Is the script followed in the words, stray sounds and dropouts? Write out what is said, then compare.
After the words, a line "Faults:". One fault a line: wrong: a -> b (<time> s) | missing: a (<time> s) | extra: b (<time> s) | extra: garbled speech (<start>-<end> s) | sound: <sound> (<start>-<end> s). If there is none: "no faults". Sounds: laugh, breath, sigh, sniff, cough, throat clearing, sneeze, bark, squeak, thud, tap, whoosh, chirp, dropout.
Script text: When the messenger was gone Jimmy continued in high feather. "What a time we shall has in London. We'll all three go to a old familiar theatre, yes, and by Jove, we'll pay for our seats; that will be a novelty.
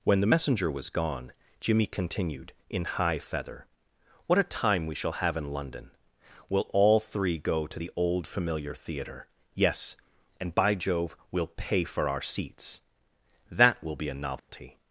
When the messenger was gone Jimmy continued in high feather. "What a time we shall have in London. We'll all three go to the old familiar theatre, yes, and by Jove, we'll pay for our seats; that will be a novelty.
Faults:
wrong: has -> have (5.2 s)
wrong: a -> the (7.8 s)
sound: dropout (14.4-14.5 s)